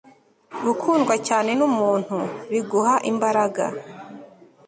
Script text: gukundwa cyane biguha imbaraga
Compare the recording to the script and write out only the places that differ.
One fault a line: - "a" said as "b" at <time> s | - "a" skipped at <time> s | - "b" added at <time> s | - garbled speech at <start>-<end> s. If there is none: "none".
- "numuntu" added at 1.6 s